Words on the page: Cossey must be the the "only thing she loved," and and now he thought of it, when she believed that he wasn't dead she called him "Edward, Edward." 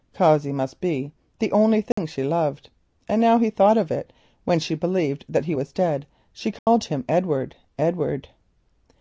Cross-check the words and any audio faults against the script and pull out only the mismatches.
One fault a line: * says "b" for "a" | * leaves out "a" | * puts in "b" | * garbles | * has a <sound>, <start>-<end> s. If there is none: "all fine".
* leaves out "the"
* has a dropout, 1.9-2.0 s
* leaves out "and"
* says "was" for "wasn't"
* has a dropout, 6.6-6.7 s